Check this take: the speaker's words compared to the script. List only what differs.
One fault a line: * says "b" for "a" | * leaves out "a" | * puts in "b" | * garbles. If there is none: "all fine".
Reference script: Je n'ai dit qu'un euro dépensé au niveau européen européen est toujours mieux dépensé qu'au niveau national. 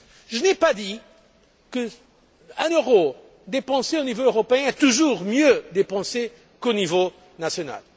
* puts in "pas"
* leaves out "européen"